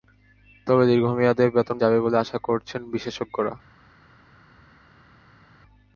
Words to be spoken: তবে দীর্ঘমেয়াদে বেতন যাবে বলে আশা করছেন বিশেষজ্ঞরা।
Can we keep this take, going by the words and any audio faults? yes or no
yes